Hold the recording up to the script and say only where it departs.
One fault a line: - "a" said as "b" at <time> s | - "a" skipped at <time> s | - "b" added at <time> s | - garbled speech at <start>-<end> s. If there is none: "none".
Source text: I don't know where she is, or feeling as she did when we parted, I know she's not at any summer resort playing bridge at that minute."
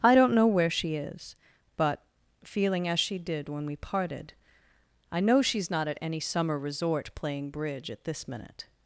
- "or" said as "but" at 1.8 s
- "that" said as "this" at 8.0 s